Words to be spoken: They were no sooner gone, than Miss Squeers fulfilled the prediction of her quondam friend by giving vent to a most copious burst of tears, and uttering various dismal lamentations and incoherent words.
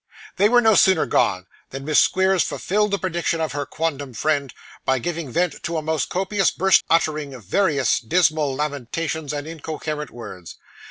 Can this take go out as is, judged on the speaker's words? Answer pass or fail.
fail